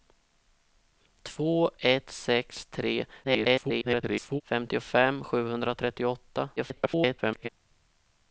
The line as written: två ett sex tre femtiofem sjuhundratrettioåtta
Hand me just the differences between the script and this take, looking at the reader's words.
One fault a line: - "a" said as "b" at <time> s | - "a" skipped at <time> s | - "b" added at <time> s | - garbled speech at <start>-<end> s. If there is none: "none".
- garbled speech at 3.2-4.4 s
- garbled speech at 6.6-7.5 s